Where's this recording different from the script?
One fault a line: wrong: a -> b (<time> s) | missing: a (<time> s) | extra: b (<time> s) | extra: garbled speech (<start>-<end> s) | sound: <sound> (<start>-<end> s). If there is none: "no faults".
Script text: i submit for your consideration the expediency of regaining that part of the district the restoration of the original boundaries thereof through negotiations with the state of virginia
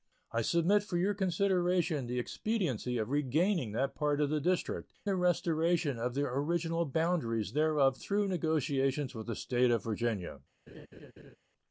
sound: laugh (10.7-11.4 s)